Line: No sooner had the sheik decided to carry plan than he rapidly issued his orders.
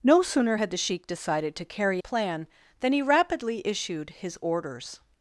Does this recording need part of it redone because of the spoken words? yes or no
no